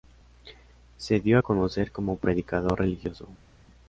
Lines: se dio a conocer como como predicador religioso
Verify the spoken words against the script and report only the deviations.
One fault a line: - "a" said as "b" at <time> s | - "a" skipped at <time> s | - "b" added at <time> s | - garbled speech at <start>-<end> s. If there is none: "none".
- "como" skipped at 2.2 s